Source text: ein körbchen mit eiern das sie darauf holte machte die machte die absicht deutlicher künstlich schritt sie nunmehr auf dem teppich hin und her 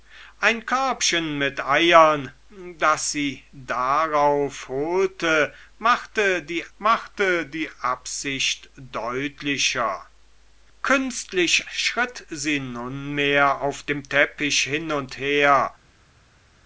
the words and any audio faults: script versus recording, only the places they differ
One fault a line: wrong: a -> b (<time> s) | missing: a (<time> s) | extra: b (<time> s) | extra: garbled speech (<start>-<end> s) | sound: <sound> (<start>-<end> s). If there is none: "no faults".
no faults